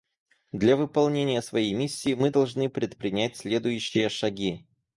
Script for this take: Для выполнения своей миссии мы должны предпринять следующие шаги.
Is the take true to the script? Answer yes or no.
yes